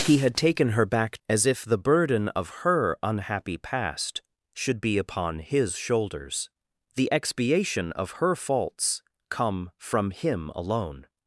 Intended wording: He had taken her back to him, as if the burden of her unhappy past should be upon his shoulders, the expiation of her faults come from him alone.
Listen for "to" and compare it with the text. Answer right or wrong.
wrong